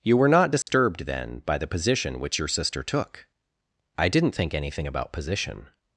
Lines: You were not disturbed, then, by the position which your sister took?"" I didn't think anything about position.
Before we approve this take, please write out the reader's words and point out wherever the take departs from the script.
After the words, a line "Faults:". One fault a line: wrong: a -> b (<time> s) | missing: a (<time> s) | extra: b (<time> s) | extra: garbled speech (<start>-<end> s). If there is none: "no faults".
You were not disturbed, then, by the position which your sister took?"" I didn't think anything about position.
Faults:
no faults